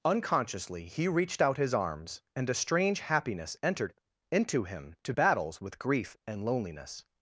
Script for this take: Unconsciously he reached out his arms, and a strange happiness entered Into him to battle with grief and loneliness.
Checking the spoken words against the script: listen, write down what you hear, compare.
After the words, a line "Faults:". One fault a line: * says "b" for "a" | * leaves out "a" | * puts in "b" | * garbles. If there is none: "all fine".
Unconsciously he reached out his arms, and a strange happiness entered Into him to battles with grief and loneliness.
Faults:
* says "battles" for "battle"